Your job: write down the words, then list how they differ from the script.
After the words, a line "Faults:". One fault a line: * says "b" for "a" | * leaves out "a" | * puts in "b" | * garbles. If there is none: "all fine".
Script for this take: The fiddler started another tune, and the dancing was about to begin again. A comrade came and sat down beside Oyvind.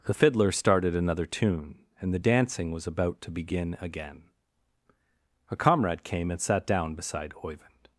The fiddler started another tune, and the dancing was about to begin again. A comrade came and sat down beside Oyvind.
Faults:
all fine